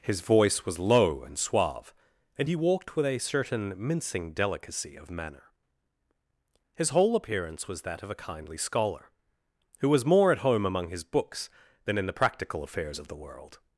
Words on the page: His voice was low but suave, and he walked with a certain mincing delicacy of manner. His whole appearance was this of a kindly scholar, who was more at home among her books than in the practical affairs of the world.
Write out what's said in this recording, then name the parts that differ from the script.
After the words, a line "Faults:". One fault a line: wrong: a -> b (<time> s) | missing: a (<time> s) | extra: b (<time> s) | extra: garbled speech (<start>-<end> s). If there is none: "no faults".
His voice was low and suave, and he walked with a certain mincing delicacy of manner. His whole appearance was that of a kindly scholar, who was more at home among his books than in the practical affairs of the world.
Faults:
wrong: but -> and (1.2 s)
wrong: this -> that (7.8 s)
wrong: her -> his (10.9 s)